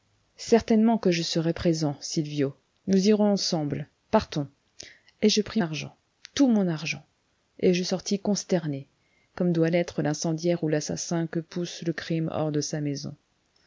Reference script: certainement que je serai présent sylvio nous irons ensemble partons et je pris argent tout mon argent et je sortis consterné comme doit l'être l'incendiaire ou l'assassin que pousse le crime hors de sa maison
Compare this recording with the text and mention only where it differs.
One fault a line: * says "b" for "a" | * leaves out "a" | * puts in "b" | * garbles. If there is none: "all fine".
all fine